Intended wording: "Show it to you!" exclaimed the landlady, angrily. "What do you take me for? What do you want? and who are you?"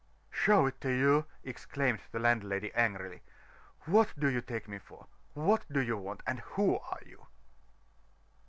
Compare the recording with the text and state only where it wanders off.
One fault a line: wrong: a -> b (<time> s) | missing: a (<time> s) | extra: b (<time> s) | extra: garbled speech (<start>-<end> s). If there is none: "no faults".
no faults